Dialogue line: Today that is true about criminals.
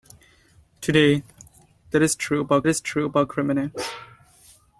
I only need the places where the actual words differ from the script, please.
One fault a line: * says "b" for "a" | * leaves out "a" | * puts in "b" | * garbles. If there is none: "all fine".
* puts in "is true about"